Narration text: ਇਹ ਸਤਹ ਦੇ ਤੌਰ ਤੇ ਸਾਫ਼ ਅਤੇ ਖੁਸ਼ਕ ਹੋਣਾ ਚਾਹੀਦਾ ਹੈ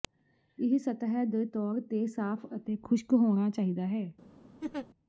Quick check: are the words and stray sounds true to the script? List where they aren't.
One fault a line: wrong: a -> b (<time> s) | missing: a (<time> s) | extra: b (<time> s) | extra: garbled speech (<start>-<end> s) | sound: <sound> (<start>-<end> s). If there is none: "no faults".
sound: laugh (4.6-4.9 s)